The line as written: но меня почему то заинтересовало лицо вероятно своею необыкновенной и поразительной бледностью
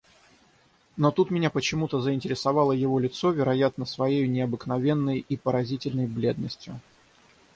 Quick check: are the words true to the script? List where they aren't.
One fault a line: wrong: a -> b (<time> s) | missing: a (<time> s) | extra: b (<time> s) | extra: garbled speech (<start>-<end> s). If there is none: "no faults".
extra: тут (1.1 s)
extra: его (2.7 s)